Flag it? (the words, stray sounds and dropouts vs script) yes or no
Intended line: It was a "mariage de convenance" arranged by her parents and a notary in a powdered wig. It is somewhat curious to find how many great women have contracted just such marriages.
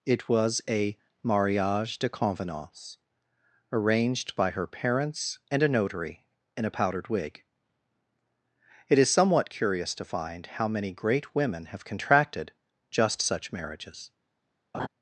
yes